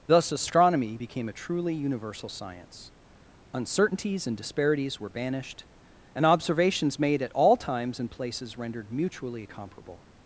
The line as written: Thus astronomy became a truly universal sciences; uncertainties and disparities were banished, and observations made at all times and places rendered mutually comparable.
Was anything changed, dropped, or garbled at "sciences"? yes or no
yes